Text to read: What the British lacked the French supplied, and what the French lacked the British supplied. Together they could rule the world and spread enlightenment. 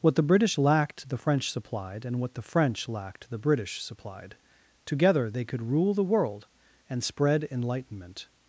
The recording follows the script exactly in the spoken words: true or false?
true